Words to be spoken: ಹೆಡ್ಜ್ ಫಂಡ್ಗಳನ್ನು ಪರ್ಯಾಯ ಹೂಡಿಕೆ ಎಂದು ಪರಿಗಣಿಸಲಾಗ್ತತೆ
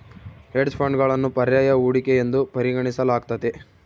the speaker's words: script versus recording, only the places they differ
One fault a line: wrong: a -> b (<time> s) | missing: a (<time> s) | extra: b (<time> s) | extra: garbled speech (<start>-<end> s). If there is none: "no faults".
no faults